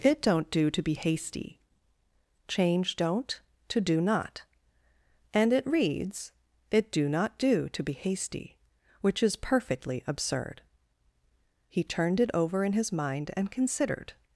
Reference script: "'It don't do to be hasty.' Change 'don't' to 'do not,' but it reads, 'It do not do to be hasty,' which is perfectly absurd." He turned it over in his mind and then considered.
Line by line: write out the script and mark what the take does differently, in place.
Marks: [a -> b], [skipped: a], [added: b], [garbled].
"'It don't do to be hasty.' Change 'don't' to 'do not,' [but -> and] it reads, 'It do not do to be hasty,' which is perfectly absurd." He turned it over in his mind and [skipped: then] considered.